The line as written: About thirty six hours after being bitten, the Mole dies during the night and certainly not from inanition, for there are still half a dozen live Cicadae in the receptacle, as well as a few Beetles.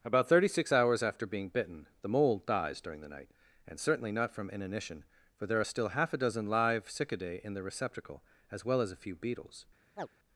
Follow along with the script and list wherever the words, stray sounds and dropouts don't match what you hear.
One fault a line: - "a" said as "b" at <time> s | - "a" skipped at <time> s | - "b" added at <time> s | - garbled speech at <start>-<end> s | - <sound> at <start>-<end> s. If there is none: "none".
- chirp at 10.0-10.1 s